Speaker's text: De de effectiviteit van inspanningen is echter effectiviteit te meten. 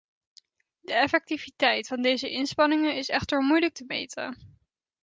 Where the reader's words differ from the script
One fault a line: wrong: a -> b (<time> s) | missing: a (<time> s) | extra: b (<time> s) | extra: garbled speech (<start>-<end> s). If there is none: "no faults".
missing: de (0.9 s)
extra: deze (2.0 s)
wrong: effectiviteit -> moeilijk (3.4 s)